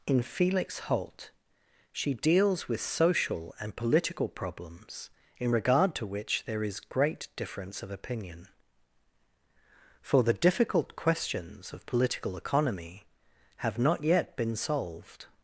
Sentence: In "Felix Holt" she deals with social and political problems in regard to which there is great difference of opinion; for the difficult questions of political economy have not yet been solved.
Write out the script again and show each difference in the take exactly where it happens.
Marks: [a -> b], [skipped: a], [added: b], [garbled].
In "Felix Holt" she deals with social and political problems in regard to which there is great difference of opinion; for the difficult questions of political economy have not yet been solved.